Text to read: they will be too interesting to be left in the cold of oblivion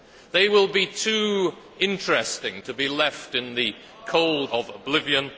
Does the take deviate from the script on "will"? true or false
false